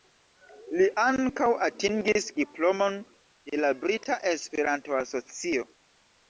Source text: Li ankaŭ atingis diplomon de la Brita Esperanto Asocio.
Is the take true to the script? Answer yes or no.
yes